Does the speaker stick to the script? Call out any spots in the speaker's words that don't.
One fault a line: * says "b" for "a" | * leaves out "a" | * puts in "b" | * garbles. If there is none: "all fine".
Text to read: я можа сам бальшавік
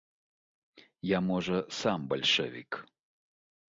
all fine